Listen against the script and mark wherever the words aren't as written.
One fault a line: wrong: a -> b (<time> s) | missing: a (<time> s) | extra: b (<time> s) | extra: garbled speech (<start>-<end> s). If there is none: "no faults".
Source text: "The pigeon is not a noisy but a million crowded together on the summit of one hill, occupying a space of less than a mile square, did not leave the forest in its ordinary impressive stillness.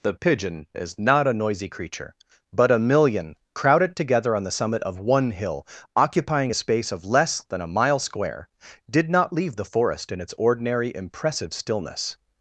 extra: creature (1.7 s)